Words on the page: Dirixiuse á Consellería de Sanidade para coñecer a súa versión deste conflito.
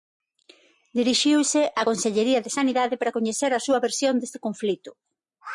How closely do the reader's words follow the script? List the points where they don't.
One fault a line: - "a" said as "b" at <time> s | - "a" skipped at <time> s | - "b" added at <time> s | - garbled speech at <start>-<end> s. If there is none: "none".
none